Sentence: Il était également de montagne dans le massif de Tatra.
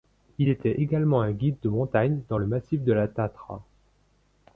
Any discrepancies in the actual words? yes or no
yes